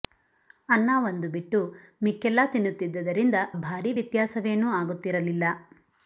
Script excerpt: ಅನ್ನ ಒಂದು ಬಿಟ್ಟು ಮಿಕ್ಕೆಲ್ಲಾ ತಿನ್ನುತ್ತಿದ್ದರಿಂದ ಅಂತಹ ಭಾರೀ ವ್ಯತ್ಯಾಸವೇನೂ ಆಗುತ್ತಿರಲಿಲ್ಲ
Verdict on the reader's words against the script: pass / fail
fail